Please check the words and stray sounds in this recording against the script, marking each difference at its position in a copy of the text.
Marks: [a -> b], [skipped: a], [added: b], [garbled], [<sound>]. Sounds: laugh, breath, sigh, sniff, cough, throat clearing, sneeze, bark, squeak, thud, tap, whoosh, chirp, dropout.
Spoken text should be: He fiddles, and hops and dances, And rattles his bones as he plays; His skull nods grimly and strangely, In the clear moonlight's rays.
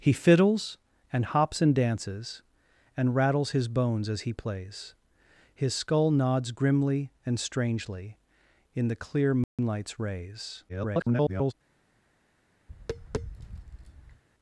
He fiddles, and hops and dances, And rattles his bones as he plays; His skull nods grimly and strangely, In the clear moonlight's [dropout] rays. [garbled] [tap]